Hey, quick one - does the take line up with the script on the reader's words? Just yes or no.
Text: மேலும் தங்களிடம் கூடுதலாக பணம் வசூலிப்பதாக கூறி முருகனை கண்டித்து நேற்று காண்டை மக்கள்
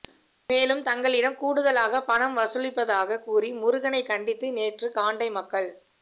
yes